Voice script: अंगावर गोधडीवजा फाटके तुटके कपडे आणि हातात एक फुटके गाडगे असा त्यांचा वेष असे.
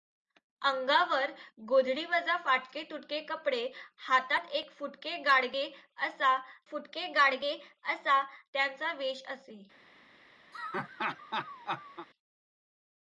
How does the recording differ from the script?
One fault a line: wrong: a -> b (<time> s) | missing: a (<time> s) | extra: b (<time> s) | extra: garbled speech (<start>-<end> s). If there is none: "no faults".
missing: आणि (3.6 s)
extra: फुटके गाडगे असा (6.6 s)